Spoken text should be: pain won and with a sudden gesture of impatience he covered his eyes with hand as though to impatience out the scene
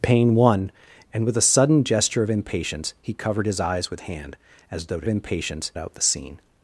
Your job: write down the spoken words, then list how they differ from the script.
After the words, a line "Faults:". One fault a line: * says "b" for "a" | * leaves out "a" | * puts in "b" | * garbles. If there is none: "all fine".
pain won and with a sudden gesture of impatience he covered his eyes with hand as though to impatience out the scene
Faults:
all fine